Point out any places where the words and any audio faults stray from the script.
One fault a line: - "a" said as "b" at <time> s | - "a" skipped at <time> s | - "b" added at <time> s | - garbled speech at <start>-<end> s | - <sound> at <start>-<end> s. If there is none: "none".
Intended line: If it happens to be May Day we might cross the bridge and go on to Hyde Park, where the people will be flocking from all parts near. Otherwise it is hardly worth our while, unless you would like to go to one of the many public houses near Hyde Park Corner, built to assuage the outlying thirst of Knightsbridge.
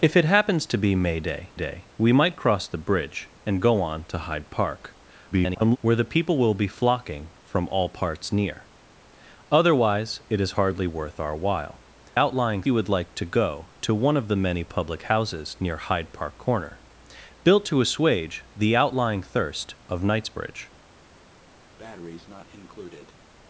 - "Day" added at 1.5 s
- garbled speech at 5.3-5.8 s
- "unless" said as "outlying" at 12.2 s
- breath at 21.8-23.2 s